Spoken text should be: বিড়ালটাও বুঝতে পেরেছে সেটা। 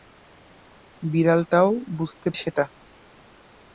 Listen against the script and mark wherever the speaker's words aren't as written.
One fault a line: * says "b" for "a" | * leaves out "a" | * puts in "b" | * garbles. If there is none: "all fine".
* leaves out "পেরেছে"